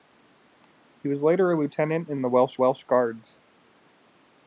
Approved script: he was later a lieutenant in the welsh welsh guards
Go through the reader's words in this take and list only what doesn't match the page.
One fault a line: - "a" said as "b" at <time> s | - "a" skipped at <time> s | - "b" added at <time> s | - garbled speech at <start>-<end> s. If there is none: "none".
none